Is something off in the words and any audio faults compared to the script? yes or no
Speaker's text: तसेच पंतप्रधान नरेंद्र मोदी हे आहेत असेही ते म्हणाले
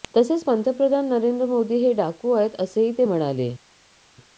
yes